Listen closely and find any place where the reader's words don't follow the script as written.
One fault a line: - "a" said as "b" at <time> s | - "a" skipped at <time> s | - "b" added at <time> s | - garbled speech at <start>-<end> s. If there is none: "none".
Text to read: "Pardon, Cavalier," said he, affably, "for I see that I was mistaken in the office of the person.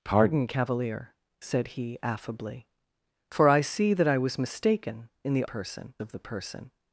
- "office" said as "person" at 5.4 s